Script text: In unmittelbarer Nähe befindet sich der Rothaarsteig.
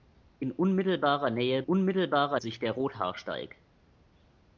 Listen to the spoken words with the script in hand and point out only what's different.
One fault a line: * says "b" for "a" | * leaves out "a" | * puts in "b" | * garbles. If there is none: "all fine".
* says "unmittelbarer" for "befindet"